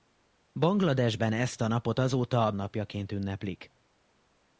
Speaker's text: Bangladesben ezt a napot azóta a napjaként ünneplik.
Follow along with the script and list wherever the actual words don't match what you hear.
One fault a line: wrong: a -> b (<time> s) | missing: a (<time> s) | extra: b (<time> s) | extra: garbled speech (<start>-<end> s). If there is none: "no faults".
no faults